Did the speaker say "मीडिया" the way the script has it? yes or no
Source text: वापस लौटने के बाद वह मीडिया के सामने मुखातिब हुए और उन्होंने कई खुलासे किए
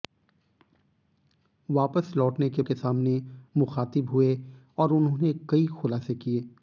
no